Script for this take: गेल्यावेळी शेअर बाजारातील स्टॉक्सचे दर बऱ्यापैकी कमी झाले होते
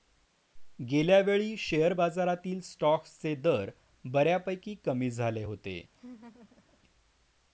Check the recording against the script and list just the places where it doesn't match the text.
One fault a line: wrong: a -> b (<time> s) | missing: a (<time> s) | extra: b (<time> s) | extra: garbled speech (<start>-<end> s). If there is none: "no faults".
no faults